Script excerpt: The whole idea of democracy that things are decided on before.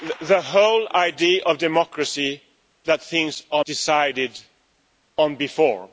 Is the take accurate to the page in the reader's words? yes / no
yes